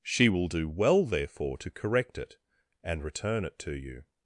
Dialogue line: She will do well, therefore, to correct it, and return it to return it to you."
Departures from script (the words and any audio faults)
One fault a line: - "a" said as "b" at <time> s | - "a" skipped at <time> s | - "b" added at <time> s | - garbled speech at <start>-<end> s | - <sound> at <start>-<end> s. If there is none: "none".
- "return it to" skipped at 3.8 s